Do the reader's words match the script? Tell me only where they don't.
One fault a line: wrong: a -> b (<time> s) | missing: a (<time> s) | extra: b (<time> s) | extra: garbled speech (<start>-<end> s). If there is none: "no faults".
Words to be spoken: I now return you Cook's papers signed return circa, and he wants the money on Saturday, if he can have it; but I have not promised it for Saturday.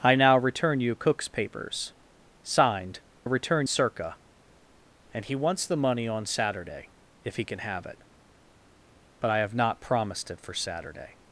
no faults